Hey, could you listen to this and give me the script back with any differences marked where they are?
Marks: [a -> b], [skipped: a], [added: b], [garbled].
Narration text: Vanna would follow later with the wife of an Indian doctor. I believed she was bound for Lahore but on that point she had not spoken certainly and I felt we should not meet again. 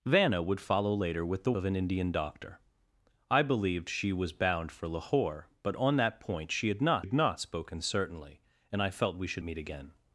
Vanna would follow later with the [skipped: wife] of an Indian doctor. I believed she was bound for Lahore but on that point she had not [added: had not] spoken certainly and I felt we should [skipped: not] meet again.